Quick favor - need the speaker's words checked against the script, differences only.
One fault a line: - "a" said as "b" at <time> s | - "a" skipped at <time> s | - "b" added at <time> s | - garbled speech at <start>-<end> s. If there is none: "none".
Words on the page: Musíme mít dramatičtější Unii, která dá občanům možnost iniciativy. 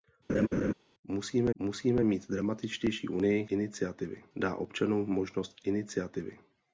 - "musíme" added at 1.5 s
- "která" said as "iniciativy" at 3.5 s